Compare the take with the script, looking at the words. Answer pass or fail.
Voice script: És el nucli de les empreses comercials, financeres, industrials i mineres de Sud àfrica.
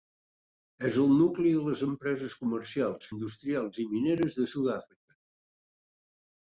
fail